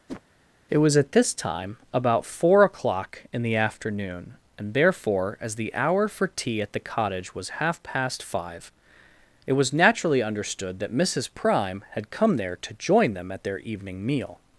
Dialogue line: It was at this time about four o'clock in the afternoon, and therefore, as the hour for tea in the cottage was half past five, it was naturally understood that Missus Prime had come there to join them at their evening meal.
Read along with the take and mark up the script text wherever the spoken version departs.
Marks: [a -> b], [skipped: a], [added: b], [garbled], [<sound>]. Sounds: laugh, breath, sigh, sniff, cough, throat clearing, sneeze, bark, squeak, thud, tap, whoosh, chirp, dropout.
[whoosh] It was at this time about four o'clock in the afternoon, and therefore, as the hour for tea [in -> at] the cottage was half past five, it was naturally understood that Missus Prime had come there to join them at their evening meal.